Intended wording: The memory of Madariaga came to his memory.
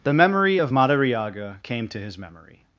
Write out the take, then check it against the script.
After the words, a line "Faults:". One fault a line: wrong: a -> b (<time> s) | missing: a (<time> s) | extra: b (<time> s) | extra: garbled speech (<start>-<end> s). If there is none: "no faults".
The memory of Madariaga came to his memory.
Faults:
no faults